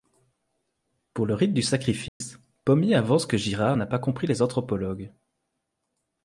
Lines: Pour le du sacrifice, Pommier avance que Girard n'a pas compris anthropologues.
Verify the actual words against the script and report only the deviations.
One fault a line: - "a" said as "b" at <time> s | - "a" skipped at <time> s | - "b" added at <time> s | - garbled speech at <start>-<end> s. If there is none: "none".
- "rite" added at 1.4 s
- "les" added at 4.3 s